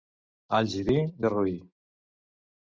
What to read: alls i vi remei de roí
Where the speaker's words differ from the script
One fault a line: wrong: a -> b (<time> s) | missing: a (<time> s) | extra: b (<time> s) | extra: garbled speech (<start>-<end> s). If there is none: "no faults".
missing: remei (1.0 s)